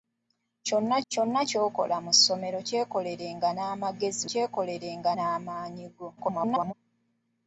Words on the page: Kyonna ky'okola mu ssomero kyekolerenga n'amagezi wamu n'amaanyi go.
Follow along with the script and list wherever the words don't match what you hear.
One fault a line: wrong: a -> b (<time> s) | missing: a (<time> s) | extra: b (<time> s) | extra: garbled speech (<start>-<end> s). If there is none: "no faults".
extra: kyonna (1.1 s)
wrong: wamu -> kyekolerenga (4.3 s)
extra: garbled speech (6.2-6.7 s)